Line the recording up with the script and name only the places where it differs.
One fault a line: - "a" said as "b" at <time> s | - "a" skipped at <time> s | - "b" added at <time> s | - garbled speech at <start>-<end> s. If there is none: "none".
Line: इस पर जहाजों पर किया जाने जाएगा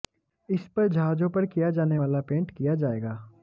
- "वाला पेंट किया" added at 2.0 s